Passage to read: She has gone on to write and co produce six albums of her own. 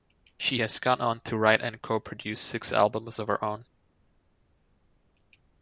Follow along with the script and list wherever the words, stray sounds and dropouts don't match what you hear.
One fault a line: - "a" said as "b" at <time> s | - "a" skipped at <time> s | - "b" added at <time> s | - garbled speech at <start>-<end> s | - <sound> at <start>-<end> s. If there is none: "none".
none